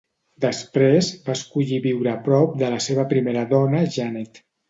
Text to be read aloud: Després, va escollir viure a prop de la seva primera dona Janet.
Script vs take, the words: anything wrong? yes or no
no